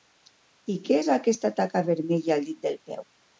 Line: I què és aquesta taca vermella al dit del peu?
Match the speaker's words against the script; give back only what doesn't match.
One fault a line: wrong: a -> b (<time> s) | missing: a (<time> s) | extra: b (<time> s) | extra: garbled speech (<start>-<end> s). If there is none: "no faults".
no faults